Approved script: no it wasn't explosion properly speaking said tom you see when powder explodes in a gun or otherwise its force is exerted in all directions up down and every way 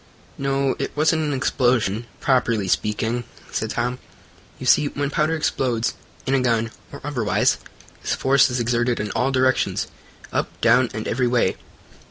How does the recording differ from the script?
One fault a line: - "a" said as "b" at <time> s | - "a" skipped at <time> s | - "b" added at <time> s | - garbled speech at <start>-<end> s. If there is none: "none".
- "an" added at 1.2 s